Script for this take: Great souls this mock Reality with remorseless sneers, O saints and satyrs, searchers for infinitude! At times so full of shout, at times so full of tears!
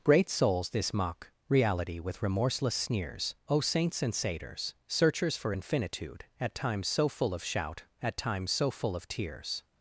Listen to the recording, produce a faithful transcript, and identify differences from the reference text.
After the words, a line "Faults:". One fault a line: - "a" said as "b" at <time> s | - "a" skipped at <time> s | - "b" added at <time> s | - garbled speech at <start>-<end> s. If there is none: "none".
Great souls this mock Reality with remorseless sneers, O saints and satyrs, searchers for infinitude! At times so full of shout, at times so full of tears!
Faults:
none